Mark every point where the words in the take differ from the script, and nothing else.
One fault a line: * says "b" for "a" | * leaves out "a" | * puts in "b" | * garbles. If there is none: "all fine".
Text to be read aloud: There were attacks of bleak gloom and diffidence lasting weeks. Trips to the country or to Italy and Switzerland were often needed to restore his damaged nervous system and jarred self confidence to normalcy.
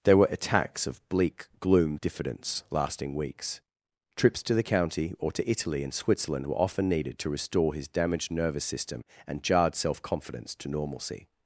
* leaves out "and"
* says "county" for "country"